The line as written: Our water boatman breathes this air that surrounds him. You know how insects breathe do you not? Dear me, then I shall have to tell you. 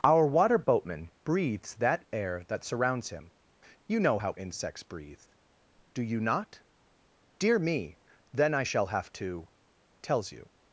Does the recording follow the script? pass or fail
fail